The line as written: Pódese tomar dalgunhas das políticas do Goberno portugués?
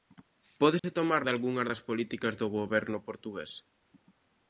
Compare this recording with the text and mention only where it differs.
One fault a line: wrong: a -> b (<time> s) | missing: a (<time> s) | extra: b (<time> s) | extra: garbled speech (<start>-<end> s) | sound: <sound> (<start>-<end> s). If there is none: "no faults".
sound: dropout (0.8-0.8 s)